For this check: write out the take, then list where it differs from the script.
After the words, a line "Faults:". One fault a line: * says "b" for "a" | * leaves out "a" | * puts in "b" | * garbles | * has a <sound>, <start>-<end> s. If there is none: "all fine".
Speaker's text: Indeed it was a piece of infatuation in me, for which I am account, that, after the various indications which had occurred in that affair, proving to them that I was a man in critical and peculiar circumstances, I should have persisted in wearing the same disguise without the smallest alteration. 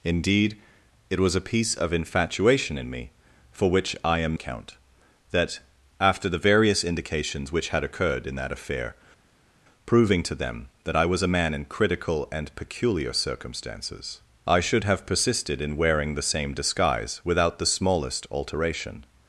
Indeed it was a piece of infatuation in me, for which I am account, that, after the various indications which had occurred in that affair, proving to them that I was a man in critical and peculiar circumstances, I should have persisted in wearing the same disguise without the smallest alteration.
Faults:
all fine